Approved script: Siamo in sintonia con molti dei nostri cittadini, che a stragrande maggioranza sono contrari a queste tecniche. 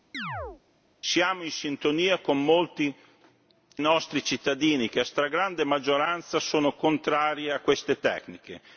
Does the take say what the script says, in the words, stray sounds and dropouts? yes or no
no